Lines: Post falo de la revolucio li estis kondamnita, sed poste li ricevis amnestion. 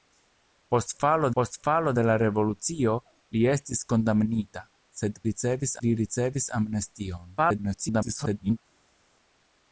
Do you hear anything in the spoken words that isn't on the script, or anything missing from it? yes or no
yes